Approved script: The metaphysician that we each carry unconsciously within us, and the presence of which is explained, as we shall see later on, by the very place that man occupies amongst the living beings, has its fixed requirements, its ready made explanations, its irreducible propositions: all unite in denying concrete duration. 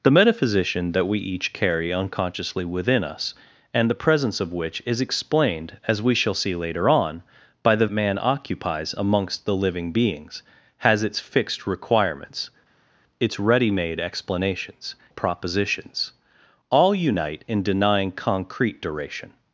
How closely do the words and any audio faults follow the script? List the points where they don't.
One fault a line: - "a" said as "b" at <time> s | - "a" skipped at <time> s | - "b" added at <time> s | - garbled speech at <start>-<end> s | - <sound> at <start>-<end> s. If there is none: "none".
- "very place that" skipped at 7.8 s
- "its irreducible" skipped at 15.0 s